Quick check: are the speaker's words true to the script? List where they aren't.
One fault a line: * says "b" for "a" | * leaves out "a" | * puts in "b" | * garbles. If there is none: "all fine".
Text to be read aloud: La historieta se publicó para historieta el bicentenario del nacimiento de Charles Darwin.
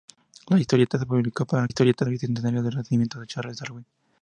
all fine